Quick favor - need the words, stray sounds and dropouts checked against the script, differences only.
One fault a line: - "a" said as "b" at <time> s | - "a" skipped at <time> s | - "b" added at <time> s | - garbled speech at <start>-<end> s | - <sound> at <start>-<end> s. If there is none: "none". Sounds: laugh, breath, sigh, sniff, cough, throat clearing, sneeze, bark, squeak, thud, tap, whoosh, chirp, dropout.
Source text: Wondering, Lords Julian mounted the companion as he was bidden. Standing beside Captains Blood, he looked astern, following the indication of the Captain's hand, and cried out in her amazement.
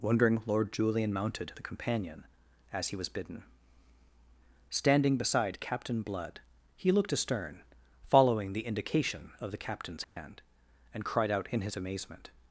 - "Lords" said as "Lord" at 0.5 s
- "Captains" said as "Captain" at 5.6 s
- dropout at 10.0-10.2 s
- "her" said as "his" at 11.6 s